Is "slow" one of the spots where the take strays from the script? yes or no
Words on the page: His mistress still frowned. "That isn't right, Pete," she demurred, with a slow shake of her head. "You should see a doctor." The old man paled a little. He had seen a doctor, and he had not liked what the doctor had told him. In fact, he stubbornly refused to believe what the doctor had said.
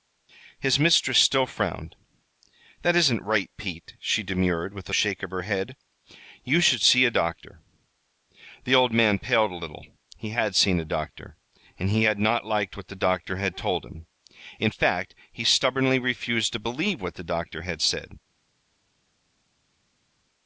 yes